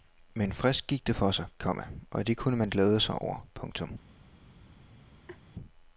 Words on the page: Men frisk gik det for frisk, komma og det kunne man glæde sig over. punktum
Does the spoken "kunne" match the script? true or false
true